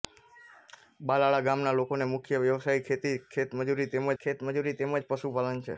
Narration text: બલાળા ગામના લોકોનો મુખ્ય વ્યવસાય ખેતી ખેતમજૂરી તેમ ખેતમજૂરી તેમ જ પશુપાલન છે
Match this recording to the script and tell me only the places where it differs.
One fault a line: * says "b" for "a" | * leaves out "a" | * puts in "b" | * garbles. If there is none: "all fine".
all fine